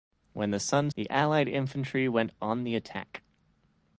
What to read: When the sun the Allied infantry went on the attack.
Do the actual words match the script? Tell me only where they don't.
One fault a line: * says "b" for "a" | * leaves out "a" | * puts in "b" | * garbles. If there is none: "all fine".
all fine